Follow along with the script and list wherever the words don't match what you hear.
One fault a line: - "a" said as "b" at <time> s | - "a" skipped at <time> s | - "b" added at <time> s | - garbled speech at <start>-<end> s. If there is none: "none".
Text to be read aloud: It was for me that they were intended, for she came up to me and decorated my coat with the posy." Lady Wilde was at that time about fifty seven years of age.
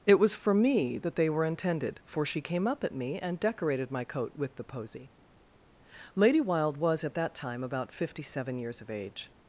- "to" said as "at" at 2.8 s